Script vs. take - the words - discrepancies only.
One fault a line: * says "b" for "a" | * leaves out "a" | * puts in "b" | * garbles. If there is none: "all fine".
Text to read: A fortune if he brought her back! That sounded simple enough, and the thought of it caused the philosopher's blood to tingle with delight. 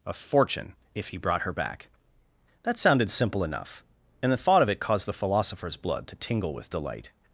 all fine